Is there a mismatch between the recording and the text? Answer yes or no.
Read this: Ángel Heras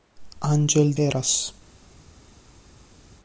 no